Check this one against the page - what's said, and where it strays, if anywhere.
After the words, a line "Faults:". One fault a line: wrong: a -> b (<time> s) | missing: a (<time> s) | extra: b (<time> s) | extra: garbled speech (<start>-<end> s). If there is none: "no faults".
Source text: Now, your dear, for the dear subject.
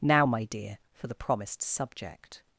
Now, my dear, for the promised subject.
Faults:
wrong: your -> my (0.2 s)
wrong: dear -> promised (1.1 s)